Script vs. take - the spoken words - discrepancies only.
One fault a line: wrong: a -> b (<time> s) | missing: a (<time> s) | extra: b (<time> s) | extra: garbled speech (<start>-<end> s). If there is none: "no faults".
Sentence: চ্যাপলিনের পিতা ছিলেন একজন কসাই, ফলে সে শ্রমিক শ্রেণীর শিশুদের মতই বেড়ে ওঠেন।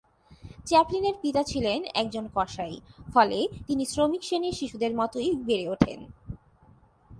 wrong: সে -> তিনি (3.7 s)